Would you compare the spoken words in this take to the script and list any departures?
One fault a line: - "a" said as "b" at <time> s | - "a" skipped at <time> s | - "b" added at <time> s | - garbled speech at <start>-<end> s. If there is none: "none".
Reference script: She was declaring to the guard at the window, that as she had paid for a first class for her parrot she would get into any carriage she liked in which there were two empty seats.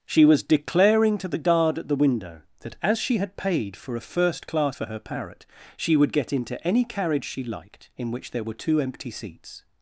none